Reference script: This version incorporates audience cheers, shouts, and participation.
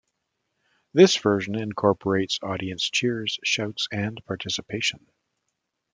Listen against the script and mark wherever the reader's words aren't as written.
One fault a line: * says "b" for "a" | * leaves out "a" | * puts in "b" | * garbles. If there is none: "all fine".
all fine